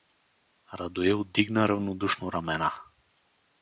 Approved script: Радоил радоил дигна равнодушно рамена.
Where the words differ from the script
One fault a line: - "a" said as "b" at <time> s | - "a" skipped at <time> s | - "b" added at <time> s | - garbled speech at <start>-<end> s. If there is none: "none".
- "радоил" skipped at 1.2 s